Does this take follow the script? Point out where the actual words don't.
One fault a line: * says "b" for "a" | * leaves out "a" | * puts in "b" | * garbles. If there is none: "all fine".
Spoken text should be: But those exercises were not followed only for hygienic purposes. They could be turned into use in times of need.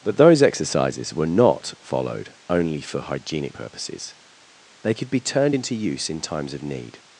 all fine